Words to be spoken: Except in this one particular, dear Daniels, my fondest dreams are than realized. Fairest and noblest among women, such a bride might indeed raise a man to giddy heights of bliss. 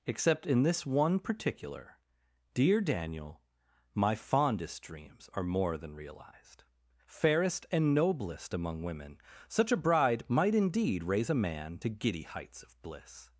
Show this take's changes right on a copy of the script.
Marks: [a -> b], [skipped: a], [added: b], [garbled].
Except in this one particular, dear [Daniels, -> Daniel] my fondest dreams are [added: more] than realized. Fairest and noblest among women, such a bride might indeed raise a man to giddy heights of bliss.